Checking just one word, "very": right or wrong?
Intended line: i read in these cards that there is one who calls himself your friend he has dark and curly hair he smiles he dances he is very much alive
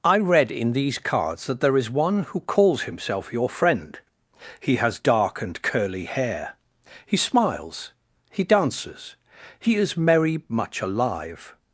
wrong